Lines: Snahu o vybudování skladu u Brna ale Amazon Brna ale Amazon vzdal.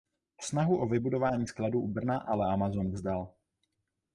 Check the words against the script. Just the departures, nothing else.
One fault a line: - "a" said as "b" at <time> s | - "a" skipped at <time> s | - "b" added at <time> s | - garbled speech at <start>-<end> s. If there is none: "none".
- "Brna ale Amazon" skipped at 2.9 s